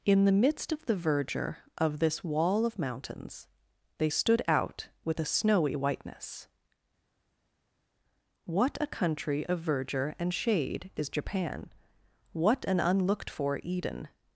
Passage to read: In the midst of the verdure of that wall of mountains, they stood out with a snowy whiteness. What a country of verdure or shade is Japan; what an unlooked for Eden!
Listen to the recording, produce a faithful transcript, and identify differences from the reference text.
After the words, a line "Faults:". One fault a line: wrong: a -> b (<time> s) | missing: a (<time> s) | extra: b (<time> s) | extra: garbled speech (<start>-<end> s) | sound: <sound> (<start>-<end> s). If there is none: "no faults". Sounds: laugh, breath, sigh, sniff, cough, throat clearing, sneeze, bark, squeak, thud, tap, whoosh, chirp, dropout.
In the midst of the verdure of this wall of mountains, they stood out with a snowy whiteness. What a country of verdure and shade is Japan; what an unlooked for Eden!
Faults:
wrong: that -> this (2.0 s)
wrong: or -> and (10.2 s)